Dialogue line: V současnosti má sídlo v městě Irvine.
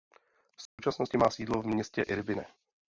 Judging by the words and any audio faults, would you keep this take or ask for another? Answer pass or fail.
fail